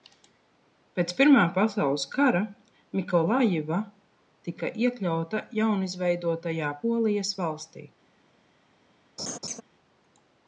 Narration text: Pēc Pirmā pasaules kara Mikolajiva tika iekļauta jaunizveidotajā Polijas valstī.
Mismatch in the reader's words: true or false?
false